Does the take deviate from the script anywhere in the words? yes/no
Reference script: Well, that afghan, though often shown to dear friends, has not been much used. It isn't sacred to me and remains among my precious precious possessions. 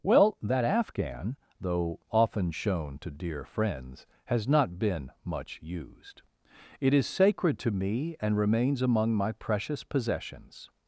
yes